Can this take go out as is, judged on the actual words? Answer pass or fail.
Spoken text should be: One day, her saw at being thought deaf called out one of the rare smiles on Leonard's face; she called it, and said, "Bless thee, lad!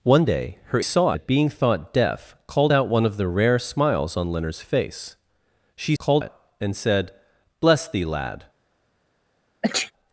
pass